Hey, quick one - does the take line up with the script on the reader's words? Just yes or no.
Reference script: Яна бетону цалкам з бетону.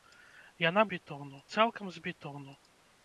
yes